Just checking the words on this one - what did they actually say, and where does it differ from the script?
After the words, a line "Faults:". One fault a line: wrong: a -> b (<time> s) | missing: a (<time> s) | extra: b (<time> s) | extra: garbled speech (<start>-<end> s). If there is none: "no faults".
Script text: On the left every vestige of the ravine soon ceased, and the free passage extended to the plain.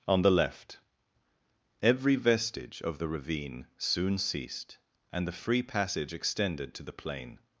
On the left every vestige of the ravine soon ceased, and the free passage extended to the plain.
Faults:
no faults